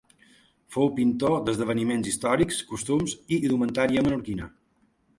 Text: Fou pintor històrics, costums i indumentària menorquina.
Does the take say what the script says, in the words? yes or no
no